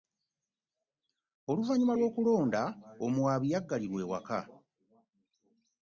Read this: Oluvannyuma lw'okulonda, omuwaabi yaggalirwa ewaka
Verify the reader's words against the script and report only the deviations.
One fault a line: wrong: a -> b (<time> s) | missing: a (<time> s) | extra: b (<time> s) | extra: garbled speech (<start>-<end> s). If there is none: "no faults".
no faults